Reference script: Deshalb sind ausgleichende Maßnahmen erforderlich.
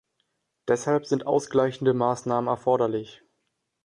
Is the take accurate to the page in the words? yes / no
yes